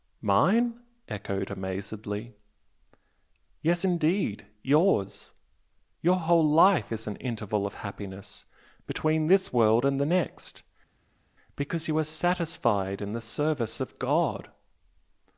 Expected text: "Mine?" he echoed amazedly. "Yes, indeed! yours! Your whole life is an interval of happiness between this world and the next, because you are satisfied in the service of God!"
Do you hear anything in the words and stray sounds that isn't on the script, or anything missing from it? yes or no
yes